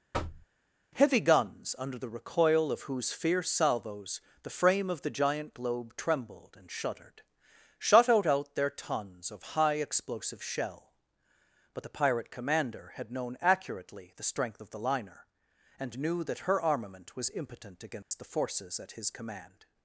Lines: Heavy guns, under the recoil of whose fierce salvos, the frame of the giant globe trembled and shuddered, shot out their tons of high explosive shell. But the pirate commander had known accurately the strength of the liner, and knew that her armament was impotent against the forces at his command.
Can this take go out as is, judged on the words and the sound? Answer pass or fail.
fail